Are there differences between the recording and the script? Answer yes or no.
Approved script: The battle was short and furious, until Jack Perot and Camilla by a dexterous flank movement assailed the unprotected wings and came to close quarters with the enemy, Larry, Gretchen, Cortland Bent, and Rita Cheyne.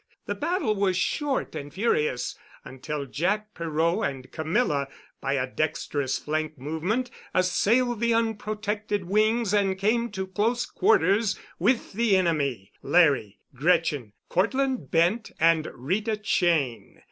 no